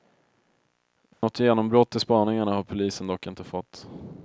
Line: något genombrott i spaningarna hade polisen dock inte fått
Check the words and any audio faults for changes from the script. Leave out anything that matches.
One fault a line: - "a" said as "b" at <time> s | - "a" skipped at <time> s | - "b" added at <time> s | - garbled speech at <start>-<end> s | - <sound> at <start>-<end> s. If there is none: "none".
- dropout at 1.1-1.2 s
- "hade" said as "har" at 2.5 s